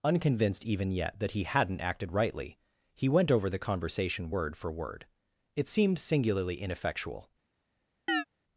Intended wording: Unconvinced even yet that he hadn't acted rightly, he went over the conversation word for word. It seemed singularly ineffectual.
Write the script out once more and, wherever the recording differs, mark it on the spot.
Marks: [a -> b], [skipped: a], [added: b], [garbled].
Unconvinced even yet that he hadn't acted rightly, he went over the conversation word for word. It seemed singularly ineffectual.